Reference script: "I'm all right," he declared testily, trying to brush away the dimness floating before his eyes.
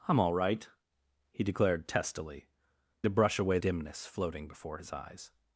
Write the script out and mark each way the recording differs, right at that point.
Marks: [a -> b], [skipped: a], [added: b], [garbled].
"I'm all right," he declared testily, [skipped: trying] to brush away [skipped: the] dimness floating before his eyes.